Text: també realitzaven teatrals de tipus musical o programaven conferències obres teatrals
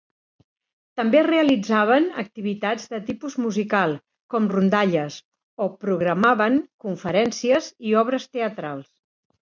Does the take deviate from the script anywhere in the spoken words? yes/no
yes